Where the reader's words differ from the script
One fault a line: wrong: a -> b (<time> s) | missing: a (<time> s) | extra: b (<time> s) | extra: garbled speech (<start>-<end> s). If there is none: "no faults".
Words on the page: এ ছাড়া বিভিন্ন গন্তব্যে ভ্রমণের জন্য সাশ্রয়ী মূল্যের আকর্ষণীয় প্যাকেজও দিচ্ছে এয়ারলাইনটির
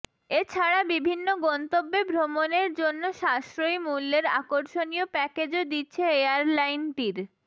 no faults